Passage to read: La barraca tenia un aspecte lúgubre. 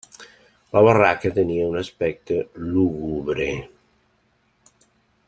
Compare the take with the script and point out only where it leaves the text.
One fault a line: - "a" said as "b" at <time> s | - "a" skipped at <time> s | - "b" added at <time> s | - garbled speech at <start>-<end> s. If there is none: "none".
none